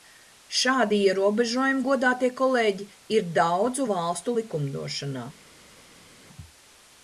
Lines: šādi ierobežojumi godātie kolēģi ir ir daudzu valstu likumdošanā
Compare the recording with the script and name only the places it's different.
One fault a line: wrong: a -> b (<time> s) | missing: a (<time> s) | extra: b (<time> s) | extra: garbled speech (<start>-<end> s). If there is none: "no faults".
missing: ir (3.2 s)